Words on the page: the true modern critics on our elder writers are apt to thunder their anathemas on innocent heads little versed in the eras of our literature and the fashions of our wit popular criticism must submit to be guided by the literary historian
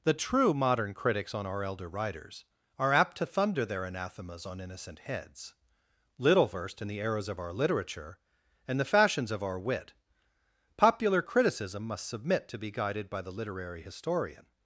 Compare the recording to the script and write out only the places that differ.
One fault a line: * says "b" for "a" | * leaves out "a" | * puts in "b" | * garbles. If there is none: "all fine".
all fine